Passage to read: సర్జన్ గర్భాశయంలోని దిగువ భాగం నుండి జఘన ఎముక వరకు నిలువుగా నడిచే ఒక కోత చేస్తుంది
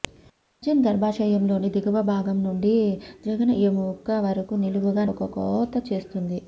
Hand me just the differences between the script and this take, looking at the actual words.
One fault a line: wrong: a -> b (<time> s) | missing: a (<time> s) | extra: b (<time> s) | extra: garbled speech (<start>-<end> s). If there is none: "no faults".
missing: నడిచే (5.0 s)